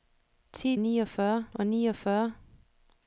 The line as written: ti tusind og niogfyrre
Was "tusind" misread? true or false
true